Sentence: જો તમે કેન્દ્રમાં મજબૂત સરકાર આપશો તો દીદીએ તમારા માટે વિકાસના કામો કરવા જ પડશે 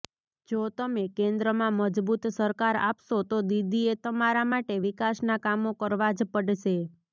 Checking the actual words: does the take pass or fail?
pass